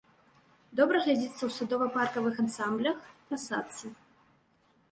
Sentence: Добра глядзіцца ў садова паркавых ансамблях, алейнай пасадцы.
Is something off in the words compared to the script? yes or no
yes